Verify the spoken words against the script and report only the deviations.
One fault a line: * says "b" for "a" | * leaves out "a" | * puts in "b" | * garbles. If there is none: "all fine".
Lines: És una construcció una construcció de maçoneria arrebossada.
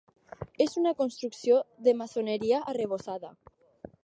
* leaves out "una construcció"